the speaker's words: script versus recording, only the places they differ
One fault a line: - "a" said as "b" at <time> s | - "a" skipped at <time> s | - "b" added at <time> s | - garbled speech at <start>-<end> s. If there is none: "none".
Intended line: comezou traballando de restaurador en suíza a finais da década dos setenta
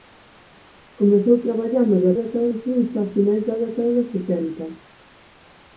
- "restaurador" said as "década" at 2.2 s